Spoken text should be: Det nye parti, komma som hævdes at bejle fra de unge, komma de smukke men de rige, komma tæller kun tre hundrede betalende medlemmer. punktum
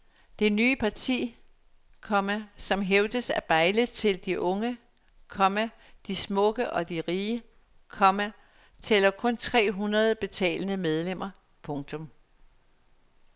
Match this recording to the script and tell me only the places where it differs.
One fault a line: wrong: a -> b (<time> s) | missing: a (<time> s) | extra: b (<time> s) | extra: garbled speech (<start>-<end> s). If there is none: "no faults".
wrong: fra -> til (3.9 s)
wrong: men -> og (6.7 s)